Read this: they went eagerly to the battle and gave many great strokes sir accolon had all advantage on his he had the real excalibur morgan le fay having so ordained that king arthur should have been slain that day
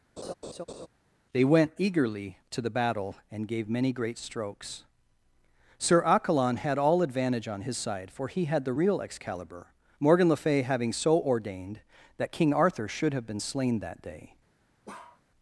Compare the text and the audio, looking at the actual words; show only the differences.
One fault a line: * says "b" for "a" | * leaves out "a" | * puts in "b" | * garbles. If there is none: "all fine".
* puts in "side for"